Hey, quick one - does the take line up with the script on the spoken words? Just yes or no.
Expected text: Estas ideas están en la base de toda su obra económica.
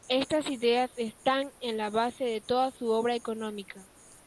yes